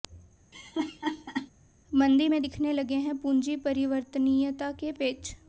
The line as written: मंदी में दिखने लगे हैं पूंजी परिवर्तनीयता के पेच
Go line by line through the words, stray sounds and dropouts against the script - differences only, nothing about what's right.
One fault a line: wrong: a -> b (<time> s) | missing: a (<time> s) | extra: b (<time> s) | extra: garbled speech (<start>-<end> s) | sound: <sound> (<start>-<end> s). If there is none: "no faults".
sound: laugh (0.5-1.5 s)